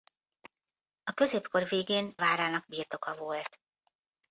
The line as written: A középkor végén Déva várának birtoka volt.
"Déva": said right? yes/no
no